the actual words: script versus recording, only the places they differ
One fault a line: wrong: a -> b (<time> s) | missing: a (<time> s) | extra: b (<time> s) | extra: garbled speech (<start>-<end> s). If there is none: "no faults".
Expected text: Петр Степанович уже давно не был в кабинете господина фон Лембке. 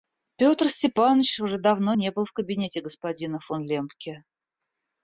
no faults